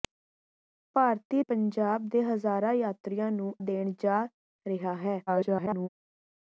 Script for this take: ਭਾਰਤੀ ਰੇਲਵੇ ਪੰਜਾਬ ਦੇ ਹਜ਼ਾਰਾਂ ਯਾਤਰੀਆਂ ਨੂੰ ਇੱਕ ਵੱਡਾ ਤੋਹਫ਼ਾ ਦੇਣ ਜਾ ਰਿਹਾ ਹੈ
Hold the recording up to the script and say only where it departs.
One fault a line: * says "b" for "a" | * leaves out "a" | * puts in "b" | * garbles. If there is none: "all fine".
* leaves out "ਰੇਲਵੇ"
* leaves out "ਇੱਕ ਵੱਡਾ ਤੋਹਫ਼ਾ"
* garbles